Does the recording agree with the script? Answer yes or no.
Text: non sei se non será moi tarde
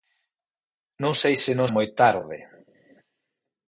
no